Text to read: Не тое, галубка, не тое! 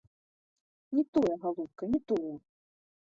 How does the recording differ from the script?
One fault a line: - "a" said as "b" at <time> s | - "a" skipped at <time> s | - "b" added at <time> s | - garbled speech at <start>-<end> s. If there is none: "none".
none